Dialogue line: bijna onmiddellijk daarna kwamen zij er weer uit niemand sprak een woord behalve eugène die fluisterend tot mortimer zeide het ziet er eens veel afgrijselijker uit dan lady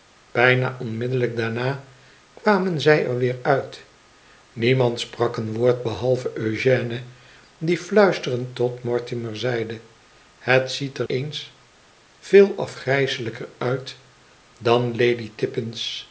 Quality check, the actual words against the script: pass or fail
pass